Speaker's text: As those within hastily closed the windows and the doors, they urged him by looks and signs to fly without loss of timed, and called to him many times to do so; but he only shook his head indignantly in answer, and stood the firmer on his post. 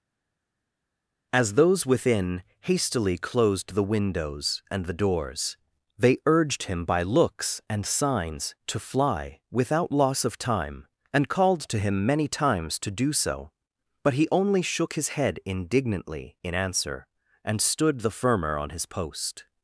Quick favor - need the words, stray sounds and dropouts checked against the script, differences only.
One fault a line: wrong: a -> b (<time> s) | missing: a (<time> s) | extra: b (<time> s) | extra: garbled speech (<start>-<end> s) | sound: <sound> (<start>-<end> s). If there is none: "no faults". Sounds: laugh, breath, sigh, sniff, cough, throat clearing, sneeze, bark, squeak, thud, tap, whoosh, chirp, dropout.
wrong: timed -> time (10.4 s)